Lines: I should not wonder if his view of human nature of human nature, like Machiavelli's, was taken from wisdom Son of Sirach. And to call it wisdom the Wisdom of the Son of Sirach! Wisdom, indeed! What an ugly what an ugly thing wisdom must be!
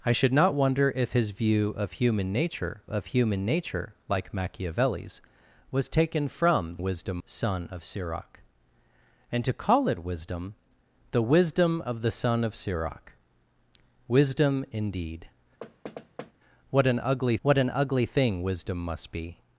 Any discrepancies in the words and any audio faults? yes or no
yes